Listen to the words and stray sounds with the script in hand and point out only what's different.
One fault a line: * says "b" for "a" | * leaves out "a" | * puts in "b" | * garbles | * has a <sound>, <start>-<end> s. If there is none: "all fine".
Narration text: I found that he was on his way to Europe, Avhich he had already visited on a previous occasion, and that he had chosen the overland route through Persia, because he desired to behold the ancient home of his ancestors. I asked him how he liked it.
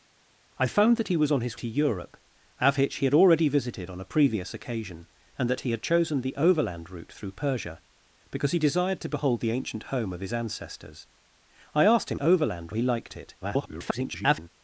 * leaves out "way"
* says "overland" for "how"
* garbles